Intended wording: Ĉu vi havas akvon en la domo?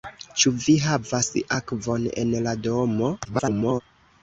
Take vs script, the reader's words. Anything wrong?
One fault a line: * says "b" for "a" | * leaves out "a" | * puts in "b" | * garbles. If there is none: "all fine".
* garbles